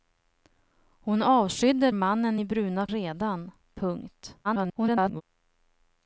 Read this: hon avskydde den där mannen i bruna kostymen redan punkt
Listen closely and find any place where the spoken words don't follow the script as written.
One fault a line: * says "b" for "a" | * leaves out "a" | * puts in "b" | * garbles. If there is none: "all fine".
* leaves out "den där"
* leaves out "kostymen"
* garbles